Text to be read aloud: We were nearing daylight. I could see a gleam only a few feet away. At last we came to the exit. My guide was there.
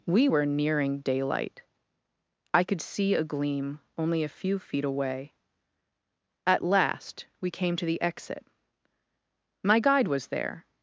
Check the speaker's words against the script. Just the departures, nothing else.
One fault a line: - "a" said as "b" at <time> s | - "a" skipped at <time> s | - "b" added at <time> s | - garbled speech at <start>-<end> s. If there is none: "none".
none